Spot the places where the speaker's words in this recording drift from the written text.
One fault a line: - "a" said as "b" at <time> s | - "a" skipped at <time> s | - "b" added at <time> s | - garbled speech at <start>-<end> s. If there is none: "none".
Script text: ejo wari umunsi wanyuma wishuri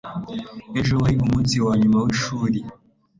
none